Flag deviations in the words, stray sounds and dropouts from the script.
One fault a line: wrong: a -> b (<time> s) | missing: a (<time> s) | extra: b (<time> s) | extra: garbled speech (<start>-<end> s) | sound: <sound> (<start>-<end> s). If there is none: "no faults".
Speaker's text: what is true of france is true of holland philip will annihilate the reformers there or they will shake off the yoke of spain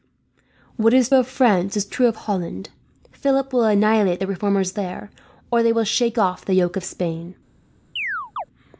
missing: true (1.1 s)
sound: chirp (8.0-8.4 s)